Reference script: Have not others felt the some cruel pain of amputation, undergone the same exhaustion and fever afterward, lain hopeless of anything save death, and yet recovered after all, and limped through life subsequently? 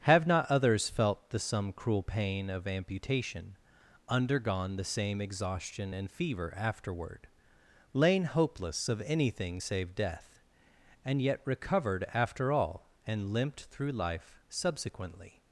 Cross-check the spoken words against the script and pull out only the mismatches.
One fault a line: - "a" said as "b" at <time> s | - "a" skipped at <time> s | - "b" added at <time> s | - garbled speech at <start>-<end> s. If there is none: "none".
none